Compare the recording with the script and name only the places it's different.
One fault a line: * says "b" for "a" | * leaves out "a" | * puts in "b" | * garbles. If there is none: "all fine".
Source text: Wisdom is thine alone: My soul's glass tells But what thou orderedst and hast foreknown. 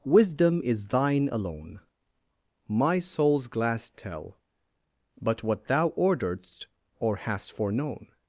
* says "tell" for "tells"
* says "or" for "and"